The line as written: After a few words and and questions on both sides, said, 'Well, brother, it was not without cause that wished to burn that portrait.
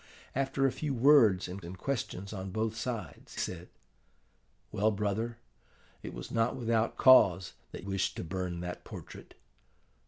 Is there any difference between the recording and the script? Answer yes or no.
no